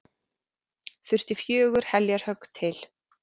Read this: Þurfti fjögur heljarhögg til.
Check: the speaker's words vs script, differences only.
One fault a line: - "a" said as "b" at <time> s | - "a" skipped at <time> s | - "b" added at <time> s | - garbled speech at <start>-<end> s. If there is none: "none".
none